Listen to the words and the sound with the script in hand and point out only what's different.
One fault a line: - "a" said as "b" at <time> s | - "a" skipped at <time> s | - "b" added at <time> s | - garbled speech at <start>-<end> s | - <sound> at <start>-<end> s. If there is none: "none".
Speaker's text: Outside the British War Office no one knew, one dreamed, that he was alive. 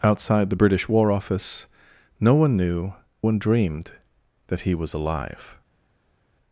none